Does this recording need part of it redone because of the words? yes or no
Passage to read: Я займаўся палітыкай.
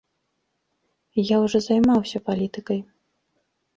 yes